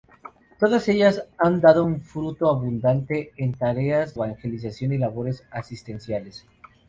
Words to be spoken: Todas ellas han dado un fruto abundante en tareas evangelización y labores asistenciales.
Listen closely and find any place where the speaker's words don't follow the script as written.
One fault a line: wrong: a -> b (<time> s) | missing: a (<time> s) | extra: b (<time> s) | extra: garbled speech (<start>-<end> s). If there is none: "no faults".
no faults